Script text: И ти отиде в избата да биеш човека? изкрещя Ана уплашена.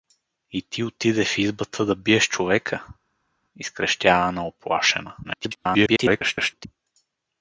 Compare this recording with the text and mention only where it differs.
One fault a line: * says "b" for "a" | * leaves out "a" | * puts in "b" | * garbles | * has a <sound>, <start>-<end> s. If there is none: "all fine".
* garbles